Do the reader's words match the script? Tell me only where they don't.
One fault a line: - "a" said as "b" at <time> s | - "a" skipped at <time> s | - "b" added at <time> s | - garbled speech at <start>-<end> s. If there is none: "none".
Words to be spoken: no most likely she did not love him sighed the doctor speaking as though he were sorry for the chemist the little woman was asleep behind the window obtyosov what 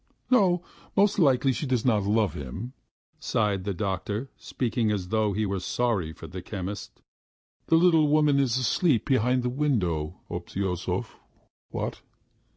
- "did" said as "does" at 1.7 s
- "was" said as "is" at 8.4 s